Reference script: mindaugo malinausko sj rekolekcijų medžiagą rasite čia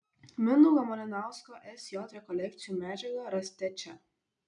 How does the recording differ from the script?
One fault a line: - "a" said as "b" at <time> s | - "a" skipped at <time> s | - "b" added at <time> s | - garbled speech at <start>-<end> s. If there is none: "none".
none